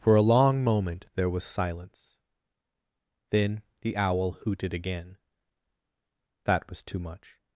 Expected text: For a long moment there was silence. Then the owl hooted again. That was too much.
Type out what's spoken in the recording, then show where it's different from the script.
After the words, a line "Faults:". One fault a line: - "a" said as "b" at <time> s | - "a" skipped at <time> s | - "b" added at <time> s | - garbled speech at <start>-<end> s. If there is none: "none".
For a long moment there was silence. Then the owl hooted again. That was too much.
Faults:
none